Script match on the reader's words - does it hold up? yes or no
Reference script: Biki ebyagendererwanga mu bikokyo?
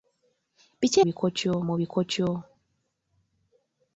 no